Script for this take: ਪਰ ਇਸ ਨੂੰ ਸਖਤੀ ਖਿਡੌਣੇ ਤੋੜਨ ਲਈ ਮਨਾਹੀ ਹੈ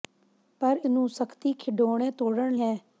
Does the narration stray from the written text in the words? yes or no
yes